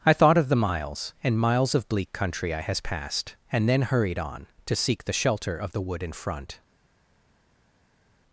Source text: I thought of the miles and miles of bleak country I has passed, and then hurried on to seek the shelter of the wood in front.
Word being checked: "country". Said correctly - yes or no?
yes